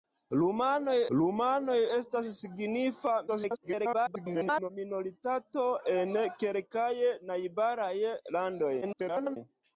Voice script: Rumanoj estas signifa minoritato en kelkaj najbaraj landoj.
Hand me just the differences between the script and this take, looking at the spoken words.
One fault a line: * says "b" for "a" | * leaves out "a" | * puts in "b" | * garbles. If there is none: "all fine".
* puts in "rumanoj"
* garbles
* garbles